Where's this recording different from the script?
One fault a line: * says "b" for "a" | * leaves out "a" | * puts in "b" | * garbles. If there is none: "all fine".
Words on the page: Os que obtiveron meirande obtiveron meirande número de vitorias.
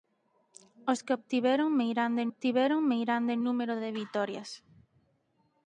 all fine